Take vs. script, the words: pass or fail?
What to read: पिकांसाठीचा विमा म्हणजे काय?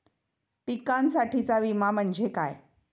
pass